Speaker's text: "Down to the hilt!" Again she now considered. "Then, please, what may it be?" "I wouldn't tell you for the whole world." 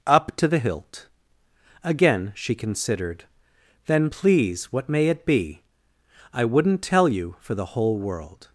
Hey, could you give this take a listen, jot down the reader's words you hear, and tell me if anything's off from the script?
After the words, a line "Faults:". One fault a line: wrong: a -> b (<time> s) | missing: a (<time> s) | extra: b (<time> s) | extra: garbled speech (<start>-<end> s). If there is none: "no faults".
"Up to the hilt!" Again she considered. "Then, please, what may it be?" "I wouldn't tell you for the whole world."
Faults:
wrong: Down -> Up (0.1 s)
missing: now (2.5 s)